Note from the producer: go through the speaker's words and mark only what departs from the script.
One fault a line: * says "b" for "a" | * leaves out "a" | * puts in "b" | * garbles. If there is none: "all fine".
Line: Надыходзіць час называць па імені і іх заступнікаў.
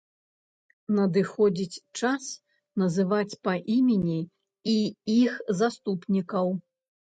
all fine